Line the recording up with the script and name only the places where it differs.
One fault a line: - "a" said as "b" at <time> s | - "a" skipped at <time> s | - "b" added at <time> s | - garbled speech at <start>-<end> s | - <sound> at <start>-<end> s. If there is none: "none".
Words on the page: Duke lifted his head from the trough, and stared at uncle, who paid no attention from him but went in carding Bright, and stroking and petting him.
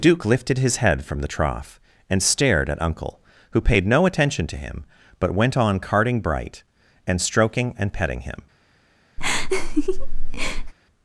- "from" said as "to" at 4.5 s
- "in" said as "on" at 5.5 s
- laugh at 9.2-10.7 s